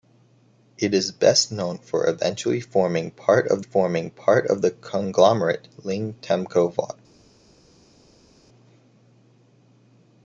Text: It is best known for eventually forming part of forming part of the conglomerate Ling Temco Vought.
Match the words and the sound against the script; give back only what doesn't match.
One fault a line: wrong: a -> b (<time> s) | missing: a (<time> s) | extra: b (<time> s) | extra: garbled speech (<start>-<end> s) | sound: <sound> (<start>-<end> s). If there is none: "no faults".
no faults